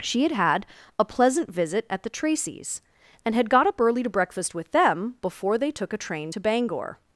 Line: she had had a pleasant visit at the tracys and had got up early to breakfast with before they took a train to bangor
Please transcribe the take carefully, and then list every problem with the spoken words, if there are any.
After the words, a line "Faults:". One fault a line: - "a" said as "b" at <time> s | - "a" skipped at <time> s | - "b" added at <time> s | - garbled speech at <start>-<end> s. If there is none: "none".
she had had a pleasant visit at the tracys and had got up early to breakfast with them before they took a train to bangor
Faults:
- "them" added at 4.7 s